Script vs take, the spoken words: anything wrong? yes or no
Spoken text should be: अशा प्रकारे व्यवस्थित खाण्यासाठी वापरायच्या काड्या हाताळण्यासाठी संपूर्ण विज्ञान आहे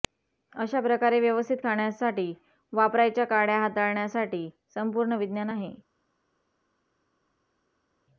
no